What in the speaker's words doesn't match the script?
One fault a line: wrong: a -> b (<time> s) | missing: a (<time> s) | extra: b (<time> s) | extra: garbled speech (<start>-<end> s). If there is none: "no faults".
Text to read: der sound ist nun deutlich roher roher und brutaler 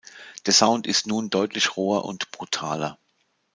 missing: roher (2.1 s)